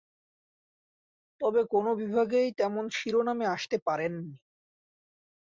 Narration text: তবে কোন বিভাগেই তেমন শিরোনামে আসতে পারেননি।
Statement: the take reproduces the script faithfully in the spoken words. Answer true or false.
true